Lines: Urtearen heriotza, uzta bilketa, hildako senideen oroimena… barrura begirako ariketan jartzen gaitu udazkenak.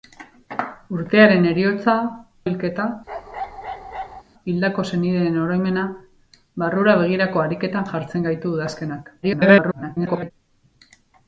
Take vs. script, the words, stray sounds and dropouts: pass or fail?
fail